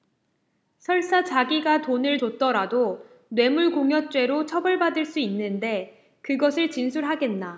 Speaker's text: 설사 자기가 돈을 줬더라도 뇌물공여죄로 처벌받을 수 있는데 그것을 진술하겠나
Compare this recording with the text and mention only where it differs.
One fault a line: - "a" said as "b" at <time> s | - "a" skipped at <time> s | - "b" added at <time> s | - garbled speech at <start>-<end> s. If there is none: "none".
none